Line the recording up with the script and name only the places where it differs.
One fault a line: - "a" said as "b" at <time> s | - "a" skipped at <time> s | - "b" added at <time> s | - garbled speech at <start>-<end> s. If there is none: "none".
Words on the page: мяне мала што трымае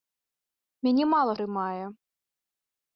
- "што" skipped at 1.3 s